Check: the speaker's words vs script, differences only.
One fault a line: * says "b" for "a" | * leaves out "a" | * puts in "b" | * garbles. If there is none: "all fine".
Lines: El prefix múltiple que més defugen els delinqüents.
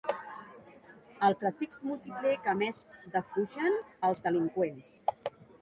all fine